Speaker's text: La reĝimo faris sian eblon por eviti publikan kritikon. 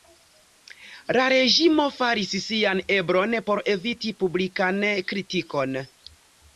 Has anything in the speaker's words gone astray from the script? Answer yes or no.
no